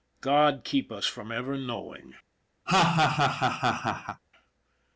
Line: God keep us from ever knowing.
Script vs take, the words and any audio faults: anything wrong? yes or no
yes